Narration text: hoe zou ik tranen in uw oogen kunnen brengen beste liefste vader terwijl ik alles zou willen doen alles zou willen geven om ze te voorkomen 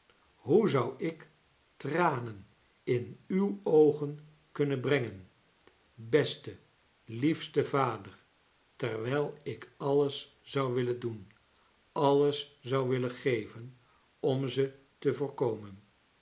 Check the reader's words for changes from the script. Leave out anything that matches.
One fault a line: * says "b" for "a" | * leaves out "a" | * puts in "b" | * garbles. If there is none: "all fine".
all fine